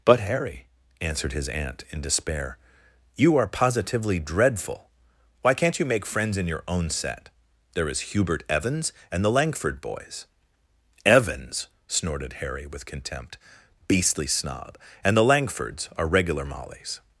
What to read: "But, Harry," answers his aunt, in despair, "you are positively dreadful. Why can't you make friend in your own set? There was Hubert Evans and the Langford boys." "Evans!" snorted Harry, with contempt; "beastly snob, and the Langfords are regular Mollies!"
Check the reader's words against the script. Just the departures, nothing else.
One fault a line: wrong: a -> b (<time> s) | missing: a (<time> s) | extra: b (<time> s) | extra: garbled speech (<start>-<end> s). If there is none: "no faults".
wrong: answers -> answered (1.0 s)
wrong: friend -> friends (6.0 s)
wrong: was -> is (7.9 s)